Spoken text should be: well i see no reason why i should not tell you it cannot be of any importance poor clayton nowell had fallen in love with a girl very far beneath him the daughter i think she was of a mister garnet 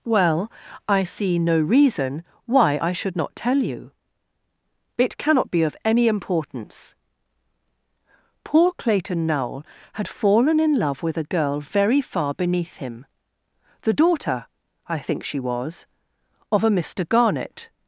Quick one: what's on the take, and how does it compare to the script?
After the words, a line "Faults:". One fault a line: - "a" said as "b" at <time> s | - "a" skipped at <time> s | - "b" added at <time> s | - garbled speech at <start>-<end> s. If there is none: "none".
well i see no reason why i should not tell you it cannot be of any importance poor clayton nowell had fallen in love with a girl very far beneath him the daughter i think she was of a mister garnet
Faults:
none